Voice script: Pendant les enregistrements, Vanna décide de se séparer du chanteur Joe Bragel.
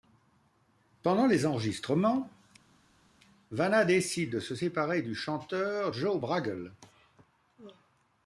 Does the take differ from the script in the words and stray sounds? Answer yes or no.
no